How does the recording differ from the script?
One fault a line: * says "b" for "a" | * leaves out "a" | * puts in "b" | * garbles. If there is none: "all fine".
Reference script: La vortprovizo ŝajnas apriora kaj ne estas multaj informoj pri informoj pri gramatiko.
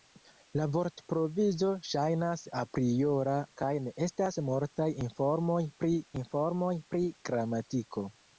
all fine